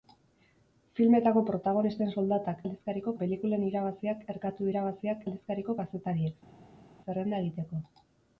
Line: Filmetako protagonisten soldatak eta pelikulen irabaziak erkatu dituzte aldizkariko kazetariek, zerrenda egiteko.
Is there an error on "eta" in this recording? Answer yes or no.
yes